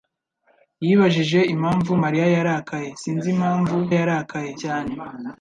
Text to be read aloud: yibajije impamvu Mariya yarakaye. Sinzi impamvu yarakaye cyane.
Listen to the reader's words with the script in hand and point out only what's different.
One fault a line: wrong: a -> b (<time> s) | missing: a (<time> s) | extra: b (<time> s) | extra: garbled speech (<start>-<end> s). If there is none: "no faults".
no faults